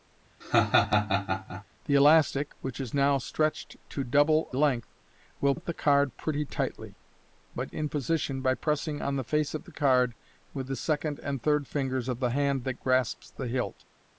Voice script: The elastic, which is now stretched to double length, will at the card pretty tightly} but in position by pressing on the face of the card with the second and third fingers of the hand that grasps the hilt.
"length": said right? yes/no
yes